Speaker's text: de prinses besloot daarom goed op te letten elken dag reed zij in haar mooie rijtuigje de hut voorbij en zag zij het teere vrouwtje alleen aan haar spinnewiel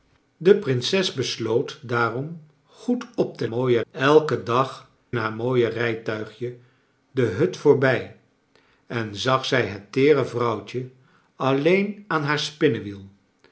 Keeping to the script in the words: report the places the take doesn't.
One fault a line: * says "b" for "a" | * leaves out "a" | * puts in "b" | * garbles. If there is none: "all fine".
* says "mooie" for "letten"
* leaves out "reed zij in"